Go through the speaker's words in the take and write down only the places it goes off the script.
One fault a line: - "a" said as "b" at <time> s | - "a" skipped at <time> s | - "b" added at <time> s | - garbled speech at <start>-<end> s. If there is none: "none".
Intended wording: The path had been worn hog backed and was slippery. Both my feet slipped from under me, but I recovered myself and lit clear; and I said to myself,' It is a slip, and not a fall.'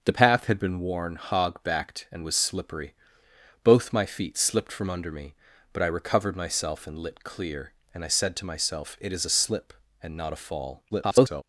- garbled speech at 10.9-11.4 s